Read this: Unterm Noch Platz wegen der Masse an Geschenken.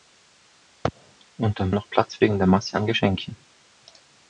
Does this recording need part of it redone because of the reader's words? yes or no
no